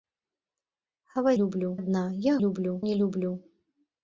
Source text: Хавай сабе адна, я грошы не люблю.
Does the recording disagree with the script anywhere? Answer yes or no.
yes